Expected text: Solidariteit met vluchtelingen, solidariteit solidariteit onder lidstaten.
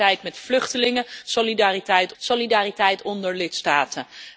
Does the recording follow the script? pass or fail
pass